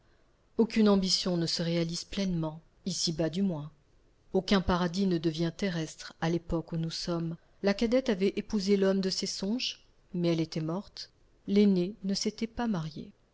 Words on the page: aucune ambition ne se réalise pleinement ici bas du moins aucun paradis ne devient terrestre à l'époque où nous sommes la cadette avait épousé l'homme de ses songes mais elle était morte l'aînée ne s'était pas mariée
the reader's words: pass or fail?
pass